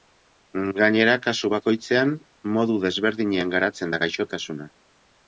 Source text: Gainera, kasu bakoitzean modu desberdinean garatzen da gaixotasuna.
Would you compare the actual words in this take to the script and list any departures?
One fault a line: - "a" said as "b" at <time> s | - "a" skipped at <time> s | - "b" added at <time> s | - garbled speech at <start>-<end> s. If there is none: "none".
none